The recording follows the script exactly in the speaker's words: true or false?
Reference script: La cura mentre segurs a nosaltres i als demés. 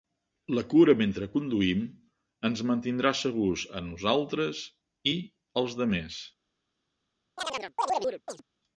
false